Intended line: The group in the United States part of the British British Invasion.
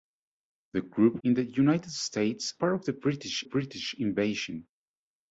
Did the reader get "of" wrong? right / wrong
right